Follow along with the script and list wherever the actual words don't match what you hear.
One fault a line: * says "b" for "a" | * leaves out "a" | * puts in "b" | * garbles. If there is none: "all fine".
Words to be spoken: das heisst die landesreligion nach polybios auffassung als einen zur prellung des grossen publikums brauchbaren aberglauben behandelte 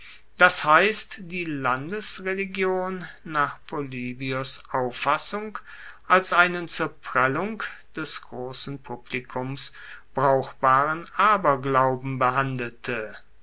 all fine